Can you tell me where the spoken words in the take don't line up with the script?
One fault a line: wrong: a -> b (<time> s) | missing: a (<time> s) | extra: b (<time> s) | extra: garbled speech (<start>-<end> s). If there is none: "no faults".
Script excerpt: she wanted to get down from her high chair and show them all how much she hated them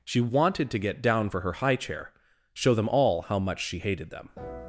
wrong: from -> for (1.3 s)
missing: and (2.1 s)